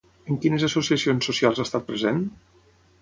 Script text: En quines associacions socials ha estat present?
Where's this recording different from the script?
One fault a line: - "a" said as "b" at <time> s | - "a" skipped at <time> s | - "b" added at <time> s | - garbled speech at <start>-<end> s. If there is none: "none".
none